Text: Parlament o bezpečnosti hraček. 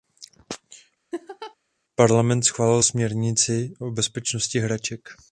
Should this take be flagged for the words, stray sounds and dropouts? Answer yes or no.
yes